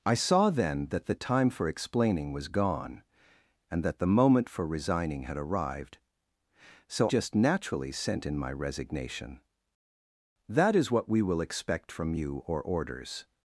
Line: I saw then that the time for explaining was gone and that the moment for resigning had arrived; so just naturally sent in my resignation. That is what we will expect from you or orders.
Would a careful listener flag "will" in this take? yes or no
no